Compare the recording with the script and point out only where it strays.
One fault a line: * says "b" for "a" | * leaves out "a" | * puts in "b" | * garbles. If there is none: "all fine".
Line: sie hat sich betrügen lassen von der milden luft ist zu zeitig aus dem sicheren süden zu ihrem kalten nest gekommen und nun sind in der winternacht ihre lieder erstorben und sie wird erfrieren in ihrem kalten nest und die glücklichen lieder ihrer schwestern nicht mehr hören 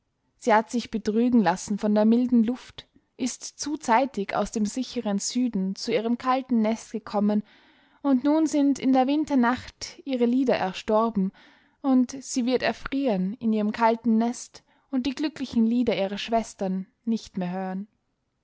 all fine